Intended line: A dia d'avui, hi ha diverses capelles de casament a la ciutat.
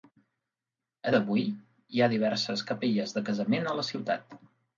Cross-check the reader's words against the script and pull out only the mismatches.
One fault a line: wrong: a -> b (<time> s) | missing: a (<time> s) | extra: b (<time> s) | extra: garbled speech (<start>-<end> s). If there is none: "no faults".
missing: dia (1.1 s)